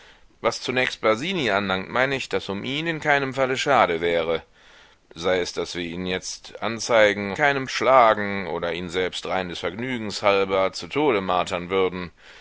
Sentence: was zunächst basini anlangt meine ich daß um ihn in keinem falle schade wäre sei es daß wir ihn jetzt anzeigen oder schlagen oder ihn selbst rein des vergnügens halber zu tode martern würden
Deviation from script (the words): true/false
true